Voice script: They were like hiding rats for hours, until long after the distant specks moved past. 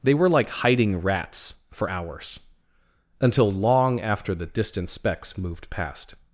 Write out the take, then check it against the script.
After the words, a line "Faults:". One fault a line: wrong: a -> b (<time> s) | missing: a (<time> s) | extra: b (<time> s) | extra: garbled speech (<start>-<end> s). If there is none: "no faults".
They were like hiding rats for hours, until long after the distant specks moved past.
Faults:
no faults